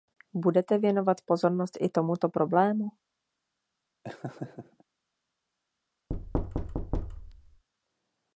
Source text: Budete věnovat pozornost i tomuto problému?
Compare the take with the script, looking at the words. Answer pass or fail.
pass